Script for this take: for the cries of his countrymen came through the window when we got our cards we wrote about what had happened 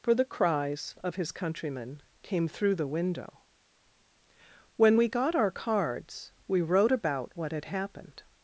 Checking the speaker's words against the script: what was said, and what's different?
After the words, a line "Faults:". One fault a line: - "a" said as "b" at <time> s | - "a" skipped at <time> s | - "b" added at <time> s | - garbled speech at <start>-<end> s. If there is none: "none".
for the cries of his countrymen came through the window when we got our cards we wrote about what had happened
Faults:
none